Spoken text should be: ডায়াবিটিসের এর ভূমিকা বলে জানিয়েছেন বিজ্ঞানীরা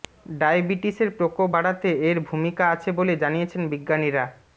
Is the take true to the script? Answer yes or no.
no